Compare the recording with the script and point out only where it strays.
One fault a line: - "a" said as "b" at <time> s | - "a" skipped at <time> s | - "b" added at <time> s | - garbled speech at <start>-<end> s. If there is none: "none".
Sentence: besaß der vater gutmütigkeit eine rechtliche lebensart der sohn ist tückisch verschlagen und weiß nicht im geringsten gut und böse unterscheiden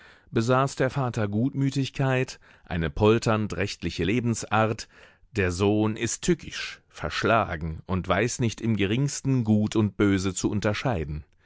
- "polternd" added at 2.9 s
- "zu" added at 10.3 s